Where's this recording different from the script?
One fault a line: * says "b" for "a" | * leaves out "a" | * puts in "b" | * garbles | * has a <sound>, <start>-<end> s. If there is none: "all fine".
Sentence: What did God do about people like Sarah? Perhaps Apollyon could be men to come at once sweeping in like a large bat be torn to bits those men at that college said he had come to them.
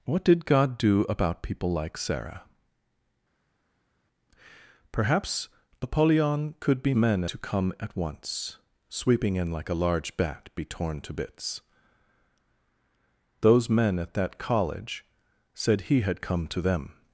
all fine